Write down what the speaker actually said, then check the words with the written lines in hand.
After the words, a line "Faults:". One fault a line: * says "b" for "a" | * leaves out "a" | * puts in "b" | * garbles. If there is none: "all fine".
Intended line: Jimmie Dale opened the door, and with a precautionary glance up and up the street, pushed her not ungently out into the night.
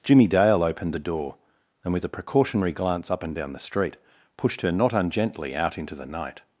Jimmie Dale opened the door, and with a precautionary glance up and down the street, pushed her not ungently out into the night.
Faults:
* says "down" for "up"